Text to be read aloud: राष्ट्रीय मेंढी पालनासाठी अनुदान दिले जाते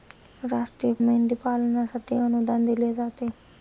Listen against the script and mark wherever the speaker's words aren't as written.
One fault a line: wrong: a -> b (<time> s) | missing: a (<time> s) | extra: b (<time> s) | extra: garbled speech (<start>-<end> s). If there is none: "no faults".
no faults